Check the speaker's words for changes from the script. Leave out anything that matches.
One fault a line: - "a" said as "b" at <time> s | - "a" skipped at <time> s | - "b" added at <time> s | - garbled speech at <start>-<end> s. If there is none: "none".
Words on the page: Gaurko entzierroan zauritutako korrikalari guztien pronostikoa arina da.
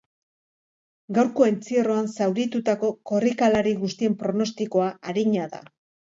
none